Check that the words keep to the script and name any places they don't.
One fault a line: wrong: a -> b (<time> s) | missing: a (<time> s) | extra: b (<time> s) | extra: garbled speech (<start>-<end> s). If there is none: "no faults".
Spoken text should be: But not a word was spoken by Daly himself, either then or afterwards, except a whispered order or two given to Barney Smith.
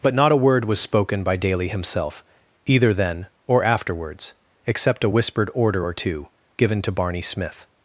no faults